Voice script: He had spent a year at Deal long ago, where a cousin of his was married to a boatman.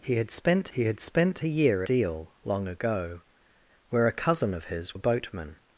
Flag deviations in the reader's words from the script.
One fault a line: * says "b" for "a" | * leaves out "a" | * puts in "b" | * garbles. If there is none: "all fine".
* puts in "he had spent"
* leaves out "at"
* leaves out "was married to"